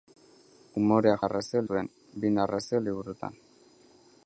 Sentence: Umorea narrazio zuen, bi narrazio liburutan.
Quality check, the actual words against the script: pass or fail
pass